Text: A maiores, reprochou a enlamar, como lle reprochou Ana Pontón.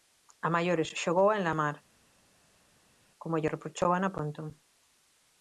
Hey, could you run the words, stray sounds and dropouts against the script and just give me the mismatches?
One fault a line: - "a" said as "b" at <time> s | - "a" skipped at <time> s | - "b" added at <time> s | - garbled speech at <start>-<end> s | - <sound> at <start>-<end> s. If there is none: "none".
- "reprochou" said as "xogou" at 1.0 s